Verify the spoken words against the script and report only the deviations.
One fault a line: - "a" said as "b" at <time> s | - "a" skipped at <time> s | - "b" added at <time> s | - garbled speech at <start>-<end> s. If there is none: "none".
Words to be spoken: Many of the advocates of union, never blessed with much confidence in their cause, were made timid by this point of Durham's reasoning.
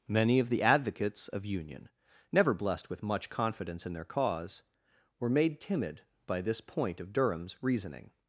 none